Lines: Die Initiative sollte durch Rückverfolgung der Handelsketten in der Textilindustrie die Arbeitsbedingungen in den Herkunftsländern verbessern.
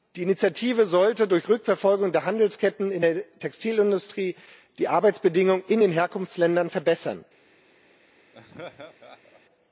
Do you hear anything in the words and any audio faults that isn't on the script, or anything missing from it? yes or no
yes